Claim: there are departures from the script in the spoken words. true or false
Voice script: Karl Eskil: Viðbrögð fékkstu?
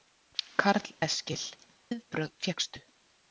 false